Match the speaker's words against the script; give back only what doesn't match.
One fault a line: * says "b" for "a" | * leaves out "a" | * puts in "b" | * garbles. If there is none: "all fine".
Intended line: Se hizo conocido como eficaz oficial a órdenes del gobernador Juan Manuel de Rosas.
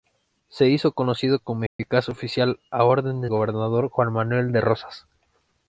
* leaves out "del"